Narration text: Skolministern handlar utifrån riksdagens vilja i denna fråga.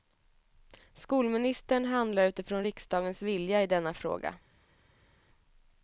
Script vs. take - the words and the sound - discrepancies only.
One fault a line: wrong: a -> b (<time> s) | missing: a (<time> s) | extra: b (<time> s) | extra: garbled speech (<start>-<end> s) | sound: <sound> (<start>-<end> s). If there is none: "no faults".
no faults